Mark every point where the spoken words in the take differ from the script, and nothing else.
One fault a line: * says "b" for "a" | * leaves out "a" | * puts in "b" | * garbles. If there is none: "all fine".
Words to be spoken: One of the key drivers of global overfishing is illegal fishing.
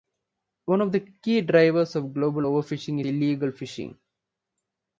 * leaves out "is"